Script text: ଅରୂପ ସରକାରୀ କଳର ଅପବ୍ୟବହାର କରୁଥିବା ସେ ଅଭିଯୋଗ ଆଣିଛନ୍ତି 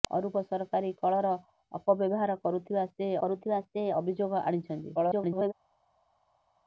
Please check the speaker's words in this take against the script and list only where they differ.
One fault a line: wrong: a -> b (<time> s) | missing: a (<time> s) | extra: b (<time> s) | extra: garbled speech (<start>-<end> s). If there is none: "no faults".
extra: କରୁଥିବା ସେ (3.2 s)
extra: garbled speech (5.0-5.5 s)